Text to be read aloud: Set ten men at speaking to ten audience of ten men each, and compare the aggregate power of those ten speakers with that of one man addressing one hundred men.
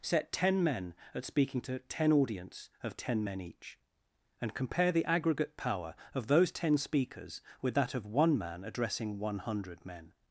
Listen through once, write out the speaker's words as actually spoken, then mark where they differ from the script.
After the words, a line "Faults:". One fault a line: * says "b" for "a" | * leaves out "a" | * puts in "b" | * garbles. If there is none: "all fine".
Set ten men at speaking to ten audience of ten men each, and compare the aggregate power of those ten speakers with that of one man addressing one hundred men.
Faults:
all fine